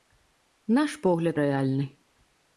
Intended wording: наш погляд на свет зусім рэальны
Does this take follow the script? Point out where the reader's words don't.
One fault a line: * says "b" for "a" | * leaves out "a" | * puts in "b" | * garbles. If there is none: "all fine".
* leaves out "на свет зусім"